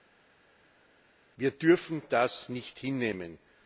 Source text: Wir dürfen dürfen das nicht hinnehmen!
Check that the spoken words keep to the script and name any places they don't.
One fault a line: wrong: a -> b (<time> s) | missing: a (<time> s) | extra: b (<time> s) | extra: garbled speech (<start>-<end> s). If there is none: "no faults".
missing: dürfen (2.0 s)